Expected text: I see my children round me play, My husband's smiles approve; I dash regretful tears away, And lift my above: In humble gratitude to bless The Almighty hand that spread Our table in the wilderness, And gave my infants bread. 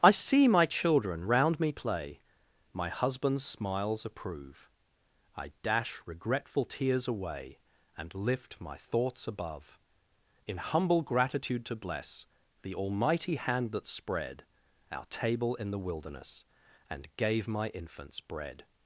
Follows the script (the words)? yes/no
no